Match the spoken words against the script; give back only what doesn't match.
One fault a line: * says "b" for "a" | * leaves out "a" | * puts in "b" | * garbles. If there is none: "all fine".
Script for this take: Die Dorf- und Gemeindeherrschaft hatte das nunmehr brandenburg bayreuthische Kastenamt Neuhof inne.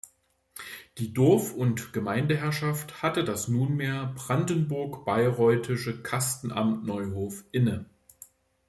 all fine